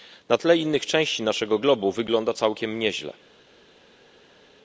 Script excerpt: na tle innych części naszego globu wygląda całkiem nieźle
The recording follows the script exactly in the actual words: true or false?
true